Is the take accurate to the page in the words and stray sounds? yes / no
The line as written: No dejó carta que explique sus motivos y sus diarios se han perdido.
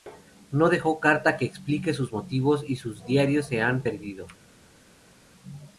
yes